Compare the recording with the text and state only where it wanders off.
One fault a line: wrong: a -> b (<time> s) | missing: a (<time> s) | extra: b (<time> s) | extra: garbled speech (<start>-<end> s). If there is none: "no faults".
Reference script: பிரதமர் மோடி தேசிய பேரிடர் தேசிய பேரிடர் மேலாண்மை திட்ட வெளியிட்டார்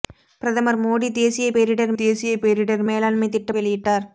no faults